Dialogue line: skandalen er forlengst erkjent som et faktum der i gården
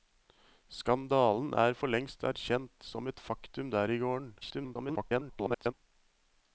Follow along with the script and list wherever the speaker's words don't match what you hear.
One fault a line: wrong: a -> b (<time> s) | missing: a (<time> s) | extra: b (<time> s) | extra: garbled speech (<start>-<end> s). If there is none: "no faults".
extra: garbled speech (4.4-5.7 s)